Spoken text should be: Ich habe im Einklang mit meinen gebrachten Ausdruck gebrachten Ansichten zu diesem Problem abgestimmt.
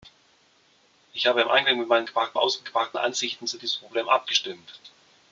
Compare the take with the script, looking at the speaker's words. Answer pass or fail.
pass